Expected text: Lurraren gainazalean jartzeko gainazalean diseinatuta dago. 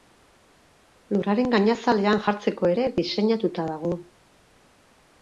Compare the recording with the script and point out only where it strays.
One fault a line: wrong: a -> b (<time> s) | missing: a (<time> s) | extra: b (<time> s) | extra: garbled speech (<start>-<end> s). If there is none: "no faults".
wrong: gainazalean -> ere (2.7 s)